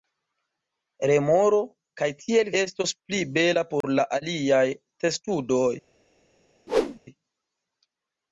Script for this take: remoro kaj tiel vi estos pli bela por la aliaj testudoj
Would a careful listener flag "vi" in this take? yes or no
yes